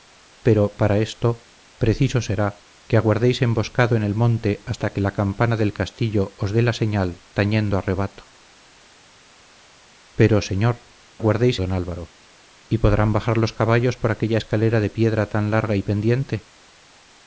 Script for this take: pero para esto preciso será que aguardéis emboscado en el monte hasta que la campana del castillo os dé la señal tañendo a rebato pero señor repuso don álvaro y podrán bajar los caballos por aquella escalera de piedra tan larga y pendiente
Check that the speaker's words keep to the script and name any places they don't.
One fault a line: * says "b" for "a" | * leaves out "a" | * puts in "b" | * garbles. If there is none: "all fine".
* says "aguardéis" for "repuso"